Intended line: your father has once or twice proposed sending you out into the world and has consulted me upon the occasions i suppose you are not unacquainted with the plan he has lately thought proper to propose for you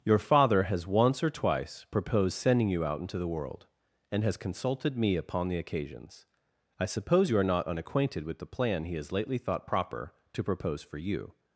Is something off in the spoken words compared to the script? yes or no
no